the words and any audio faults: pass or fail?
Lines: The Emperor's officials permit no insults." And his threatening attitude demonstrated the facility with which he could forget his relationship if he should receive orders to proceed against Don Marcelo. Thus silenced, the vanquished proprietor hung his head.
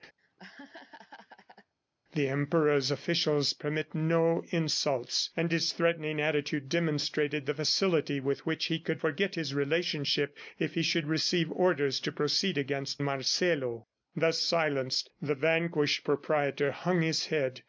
fail